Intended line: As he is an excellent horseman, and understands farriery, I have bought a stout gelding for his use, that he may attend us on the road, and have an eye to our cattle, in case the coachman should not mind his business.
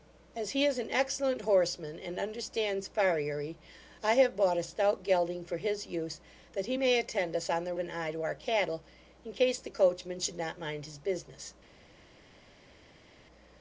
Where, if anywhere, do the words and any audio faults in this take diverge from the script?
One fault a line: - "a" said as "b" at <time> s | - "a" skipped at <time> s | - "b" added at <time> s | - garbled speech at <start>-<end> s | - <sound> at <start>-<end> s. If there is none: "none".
- "road and have" skipped at 7.7 s